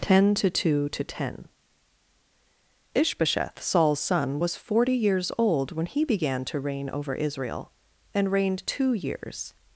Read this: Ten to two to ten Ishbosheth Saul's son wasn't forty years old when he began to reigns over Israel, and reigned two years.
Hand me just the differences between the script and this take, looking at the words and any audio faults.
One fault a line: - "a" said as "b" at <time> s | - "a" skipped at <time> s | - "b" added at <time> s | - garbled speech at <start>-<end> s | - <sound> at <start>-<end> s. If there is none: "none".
- "wasn't" said as "was" at 4.4 s
- "reigns" said as "reign" at 6.6 s